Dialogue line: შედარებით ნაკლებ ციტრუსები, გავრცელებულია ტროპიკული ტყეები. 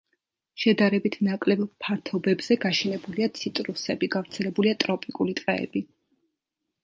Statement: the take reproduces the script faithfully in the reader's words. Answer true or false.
false